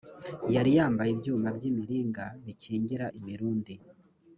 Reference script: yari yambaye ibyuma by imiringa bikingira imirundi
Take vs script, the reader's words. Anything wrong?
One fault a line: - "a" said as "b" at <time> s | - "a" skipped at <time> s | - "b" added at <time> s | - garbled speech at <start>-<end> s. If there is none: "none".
none